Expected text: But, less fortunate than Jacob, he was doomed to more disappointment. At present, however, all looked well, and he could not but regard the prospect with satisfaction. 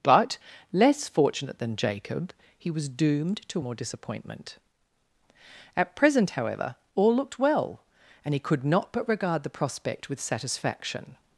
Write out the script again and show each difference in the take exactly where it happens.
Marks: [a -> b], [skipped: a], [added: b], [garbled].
But, less fortunate than Jacob, he was doomed to more disappointment. At present, however, all looked well, and he could not but regard the prospect with satisfaction.